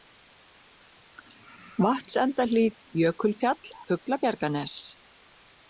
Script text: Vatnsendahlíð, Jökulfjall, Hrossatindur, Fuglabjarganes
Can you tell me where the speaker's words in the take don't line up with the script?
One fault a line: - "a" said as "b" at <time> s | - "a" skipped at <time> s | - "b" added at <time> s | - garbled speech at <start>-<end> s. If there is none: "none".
- "Hrossatindur" skipped at 3.7 s